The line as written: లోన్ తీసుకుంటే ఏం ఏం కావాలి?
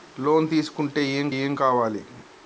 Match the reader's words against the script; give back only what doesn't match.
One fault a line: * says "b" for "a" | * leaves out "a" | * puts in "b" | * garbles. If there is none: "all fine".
all fine